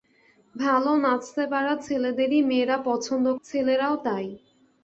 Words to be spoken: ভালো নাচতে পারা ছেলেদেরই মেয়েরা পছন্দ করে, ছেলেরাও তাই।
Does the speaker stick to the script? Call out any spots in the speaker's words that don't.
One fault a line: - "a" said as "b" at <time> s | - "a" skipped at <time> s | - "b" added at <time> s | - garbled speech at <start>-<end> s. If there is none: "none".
- "করে" skipped at 3.2 s